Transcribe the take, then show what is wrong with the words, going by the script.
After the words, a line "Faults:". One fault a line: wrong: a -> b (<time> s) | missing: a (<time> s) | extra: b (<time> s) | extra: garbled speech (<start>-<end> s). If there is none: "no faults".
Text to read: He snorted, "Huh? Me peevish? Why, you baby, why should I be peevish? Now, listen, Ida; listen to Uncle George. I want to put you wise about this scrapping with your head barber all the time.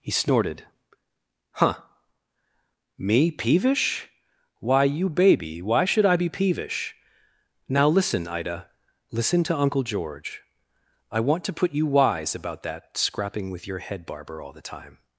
He snorted, "Huh? Me peevish? Why, you baby, why should I be peevish? Now, listen, Ida; listen to Uncle George. I want to put you wise about that scrapping with your head barber all the time.
Faults:
wrong: this -> that (12.6 s)